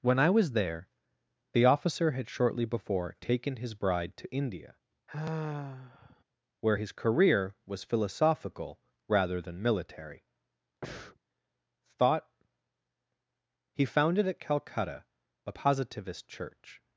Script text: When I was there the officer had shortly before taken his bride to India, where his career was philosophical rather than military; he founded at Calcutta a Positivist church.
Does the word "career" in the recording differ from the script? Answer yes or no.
no